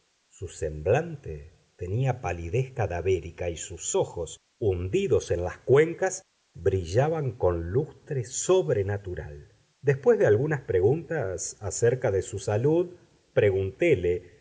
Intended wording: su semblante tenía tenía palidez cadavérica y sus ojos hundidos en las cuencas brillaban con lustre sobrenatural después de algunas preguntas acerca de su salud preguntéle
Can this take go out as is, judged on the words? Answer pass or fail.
fail